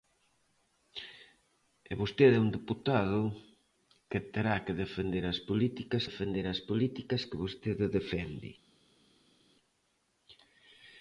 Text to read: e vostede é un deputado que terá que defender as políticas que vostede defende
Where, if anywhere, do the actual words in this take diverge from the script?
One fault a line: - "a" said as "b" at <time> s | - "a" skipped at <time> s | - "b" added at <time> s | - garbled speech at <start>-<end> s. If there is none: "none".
- "defender as políticas" added at 6.1 s